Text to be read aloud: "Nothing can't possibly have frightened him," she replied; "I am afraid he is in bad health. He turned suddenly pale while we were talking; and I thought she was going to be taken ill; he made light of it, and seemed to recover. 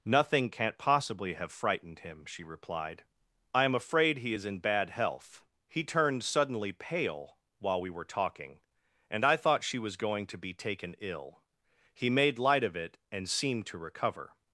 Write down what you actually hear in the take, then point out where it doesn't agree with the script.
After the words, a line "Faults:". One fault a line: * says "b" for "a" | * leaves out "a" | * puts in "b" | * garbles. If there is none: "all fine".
"Nothing can't possibly have frightened him," she replied; "I am afraid he is in bad health. He turned suddenly pale while we were talking; and I thought she was going to be taken ill; he made light of it, and seemed to recover.
Faults:
all fine